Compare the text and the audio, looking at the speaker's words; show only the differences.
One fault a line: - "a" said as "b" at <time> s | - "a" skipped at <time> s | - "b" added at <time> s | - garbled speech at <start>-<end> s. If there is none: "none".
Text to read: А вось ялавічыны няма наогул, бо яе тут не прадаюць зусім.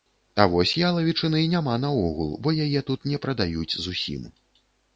none